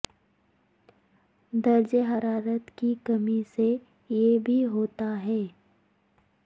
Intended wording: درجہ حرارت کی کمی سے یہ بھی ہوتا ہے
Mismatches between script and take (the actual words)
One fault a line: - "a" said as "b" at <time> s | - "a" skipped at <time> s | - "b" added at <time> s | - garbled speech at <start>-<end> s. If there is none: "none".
none